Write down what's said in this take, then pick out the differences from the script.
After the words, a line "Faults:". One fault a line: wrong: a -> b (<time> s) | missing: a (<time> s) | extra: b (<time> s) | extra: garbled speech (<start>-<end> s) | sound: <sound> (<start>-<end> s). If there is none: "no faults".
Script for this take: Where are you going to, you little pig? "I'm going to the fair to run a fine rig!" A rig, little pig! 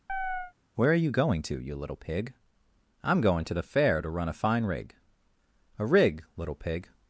Where are you going to, you little pig? "I'm going to the fair to run a fine rig!" A rig, little pig!
Faults:
sound: chirp (0.1-0.5 s)